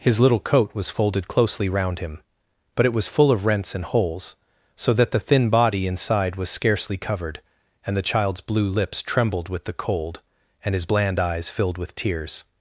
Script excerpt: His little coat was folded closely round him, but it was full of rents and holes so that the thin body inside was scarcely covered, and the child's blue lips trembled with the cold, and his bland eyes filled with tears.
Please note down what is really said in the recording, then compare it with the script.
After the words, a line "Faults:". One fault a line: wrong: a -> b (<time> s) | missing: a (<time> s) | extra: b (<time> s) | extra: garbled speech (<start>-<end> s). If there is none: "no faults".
His little coat was folded closely round him, but it was full of rents and holes so that the thin body inside was scarcely covered, and the child's blue lips trembled with the cold, and his bland eyes filled with tears.
Faults:
no faults